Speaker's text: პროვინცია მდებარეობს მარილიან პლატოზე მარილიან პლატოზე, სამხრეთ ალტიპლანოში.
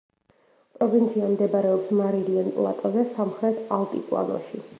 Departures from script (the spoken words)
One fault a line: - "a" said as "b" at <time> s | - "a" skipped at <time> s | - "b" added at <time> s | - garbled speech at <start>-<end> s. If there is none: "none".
- "მარილიან პლატოზე" skipped at 3.0 s